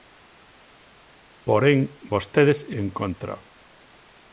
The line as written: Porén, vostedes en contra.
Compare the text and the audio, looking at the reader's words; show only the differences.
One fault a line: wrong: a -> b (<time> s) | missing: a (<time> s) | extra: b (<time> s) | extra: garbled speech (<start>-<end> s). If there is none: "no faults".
no faults